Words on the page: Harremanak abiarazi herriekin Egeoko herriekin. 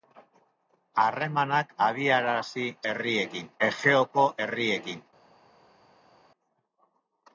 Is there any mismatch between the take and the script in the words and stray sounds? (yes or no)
no